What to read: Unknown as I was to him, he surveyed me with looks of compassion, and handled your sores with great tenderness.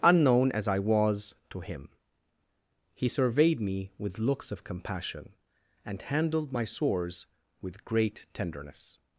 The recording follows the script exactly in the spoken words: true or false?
false